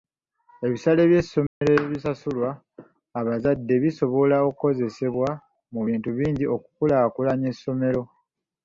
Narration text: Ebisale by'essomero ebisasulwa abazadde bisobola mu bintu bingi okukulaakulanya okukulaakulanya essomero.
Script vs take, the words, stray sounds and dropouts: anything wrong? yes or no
yes